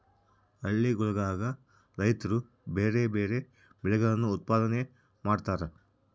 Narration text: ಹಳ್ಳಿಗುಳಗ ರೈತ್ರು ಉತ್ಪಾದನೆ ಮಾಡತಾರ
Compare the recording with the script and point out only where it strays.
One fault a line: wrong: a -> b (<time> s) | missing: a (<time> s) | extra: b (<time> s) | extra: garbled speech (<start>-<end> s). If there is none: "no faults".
extra: ಬ್ಯಾರೆ ಬ್ಯಾರೆ ಬೆಳೆಗಳನ್ನು (2.7 s)